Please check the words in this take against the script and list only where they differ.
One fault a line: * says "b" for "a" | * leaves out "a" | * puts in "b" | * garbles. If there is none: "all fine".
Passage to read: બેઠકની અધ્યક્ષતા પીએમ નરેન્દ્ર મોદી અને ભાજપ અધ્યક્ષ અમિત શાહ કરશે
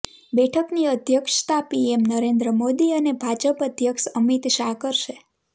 all fine